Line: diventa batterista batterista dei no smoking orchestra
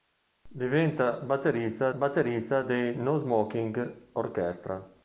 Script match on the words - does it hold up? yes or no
yes